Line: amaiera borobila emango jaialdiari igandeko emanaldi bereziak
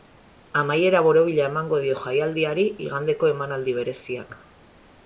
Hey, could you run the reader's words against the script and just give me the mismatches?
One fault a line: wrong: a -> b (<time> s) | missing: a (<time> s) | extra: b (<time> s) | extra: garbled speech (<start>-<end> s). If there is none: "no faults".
extra: dio (1.9 s)